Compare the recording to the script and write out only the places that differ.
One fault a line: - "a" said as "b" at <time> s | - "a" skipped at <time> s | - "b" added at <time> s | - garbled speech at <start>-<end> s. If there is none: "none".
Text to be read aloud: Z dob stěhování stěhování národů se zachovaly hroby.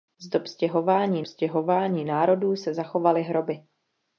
none